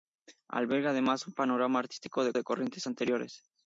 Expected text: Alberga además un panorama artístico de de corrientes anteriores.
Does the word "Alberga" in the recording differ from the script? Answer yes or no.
no